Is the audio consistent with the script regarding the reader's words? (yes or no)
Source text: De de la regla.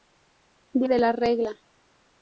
yes